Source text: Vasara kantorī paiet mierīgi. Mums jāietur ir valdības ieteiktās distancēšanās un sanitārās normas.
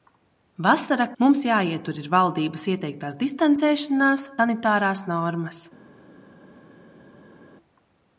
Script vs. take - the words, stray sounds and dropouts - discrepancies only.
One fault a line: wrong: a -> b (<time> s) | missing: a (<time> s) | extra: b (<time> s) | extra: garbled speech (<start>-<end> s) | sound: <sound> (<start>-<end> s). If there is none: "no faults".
missing: kantorī paiet mierīgi (1.1 s)
missing: un (4.3 s)